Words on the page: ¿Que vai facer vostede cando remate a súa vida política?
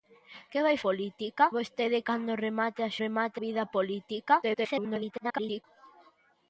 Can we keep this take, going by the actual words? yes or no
no